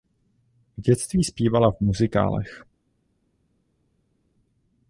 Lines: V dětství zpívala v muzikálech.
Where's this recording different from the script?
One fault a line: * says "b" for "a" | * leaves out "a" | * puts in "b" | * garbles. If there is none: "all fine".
all fine